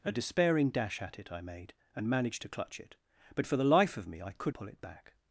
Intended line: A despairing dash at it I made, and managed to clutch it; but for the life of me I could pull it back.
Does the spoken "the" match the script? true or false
true